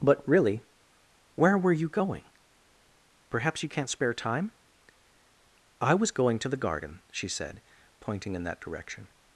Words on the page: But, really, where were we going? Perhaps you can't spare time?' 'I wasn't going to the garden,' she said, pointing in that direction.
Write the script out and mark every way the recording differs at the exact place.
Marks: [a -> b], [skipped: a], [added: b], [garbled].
But, really, where were [we -> you] going? Perhaps you can't spare time?' 'I [wasn't -> was] going to the garden,' she said, pointing in that direction.